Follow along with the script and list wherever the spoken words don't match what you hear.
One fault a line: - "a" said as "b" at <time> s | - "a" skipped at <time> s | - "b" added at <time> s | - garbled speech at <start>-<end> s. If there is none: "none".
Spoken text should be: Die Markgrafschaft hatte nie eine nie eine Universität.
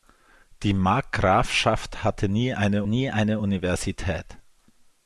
none